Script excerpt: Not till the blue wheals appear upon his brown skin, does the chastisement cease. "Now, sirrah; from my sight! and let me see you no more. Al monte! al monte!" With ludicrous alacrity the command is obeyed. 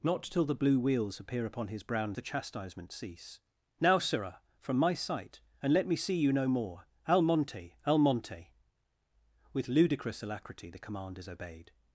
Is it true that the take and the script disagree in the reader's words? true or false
true